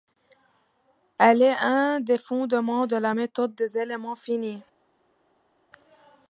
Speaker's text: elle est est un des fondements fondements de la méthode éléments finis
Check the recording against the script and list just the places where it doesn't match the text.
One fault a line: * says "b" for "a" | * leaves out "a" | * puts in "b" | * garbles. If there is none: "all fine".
* leaves out "est"
* leaves out "fondements"
* puts in "des"